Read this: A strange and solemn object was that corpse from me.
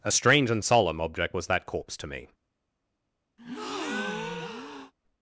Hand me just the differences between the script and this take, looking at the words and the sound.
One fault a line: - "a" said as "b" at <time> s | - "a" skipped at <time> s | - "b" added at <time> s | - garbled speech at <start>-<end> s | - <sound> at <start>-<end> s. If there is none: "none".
- "from" said as "to" at 2.0 s
- breath at 3.4-4.9 s